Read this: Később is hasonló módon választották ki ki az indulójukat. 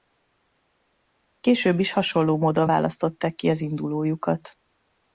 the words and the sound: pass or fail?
fail